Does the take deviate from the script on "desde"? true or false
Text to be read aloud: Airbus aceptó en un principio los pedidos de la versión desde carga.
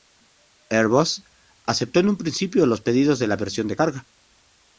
true